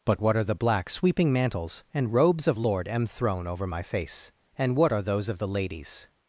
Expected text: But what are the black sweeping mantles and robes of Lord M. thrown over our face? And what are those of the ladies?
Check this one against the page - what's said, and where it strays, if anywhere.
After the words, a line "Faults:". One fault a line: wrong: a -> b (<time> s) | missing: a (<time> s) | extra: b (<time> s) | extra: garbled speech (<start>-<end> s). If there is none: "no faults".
But what are the black sweeping mantles and robes of Lord M. thrown over my face? And what are those of the ladies?
Faults:
wrong: our -> my (3.7 s)